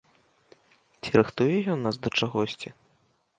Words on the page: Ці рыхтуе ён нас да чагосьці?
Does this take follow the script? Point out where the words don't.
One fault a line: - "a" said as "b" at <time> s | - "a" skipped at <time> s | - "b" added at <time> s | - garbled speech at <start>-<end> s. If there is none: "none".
none